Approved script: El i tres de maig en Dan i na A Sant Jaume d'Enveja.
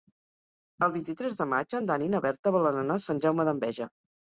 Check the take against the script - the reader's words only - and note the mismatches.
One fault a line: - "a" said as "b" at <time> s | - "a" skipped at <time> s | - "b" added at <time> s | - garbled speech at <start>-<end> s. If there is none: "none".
- "vint" added at 0.9 s
- "Berta volen anar" added at 2.3 s